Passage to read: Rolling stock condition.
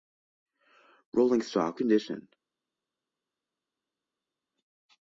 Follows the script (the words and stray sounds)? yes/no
yes